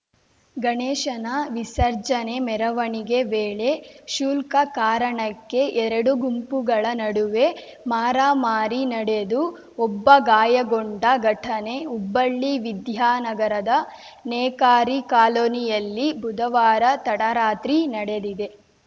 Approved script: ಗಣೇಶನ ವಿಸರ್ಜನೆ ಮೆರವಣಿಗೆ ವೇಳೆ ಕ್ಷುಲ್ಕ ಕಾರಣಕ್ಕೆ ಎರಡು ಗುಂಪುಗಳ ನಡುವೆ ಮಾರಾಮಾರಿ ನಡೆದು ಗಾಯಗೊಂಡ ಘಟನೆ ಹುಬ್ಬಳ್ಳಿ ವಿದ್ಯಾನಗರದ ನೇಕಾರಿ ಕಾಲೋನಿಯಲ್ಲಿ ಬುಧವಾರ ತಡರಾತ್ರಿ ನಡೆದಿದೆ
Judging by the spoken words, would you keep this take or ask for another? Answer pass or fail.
fail